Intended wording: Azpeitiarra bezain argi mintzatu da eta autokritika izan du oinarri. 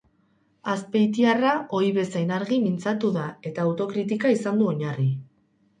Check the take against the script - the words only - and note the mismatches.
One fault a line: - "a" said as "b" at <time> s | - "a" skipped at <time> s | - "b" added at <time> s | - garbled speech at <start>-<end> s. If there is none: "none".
- "ohi" added at 1.8 s